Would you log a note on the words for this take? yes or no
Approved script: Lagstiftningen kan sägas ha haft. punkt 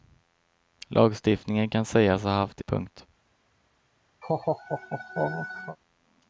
no